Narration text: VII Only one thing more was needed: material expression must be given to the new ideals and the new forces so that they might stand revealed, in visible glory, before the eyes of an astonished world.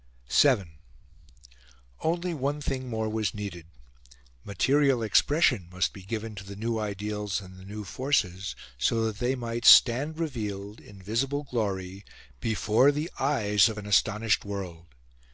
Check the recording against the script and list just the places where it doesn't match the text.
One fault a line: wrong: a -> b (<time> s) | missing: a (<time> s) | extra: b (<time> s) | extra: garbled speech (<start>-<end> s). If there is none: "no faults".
no faults